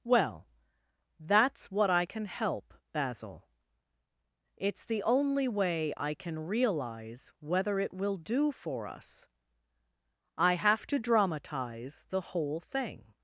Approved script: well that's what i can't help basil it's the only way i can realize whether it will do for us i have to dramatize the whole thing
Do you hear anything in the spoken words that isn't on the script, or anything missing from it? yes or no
yes